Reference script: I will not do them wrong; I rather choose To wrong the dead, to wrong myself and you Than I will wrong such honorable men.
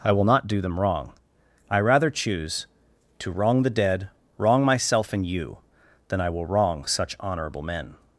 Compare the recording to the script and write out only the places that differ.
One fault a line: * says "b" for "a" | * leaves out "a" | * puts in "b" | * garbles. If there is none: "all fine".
* leaves out "to"